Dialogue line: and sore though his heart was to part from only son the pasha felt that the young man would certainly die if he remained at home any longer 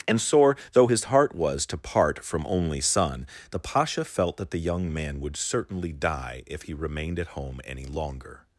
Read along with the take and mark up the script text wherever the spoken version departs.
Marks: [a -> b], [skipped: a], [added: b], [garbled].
and sore though his heart was to part from only son the pasha felt that the young man would certainly die if he remained at home any longer